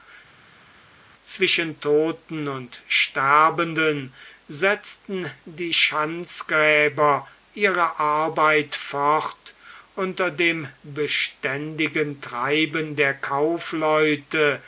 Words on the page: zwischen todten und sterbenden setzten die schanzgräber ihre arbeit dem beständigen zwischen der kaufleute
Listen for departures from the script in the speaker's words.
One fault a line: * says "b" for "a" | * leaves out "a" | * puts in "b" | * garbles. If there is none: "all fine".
* puts in "fort unter"
* says "treiben" for "zwischen"